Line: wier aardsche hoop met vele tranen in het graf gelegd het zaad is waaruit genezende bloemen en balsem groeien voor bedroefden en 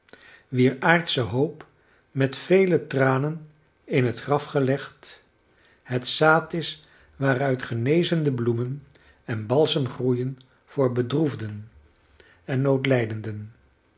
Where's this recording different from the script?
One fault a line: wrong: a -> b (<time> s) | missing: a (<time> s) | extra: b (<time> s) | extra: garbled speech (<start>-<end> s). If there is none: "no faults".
no faults